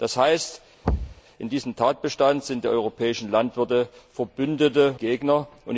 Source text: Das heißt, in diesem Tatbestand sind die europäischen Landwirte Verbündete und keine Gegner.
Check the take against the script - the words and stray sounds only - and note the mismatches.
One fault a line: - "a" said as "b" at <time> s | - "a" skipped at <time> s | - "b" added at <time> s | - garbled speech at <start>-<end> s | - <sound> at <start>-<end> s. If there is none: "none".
- thud at 0.8-1.2 s
- "und keine" skipped at 5.0 s